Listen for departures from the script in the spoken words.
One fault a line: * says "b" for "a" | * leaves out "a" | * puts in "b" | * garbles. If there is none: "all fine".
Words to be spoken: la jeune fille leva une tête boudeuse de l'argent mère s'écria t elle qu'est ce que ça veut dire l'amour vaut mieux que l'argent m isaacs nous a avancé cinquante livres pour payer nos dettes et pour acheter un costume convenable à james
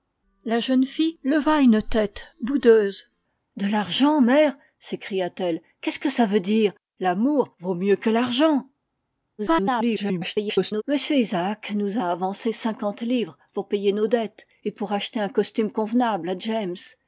* garbles